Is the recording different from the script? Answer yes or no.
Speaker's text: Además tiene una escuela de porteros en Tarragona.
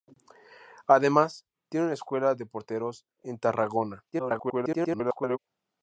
yes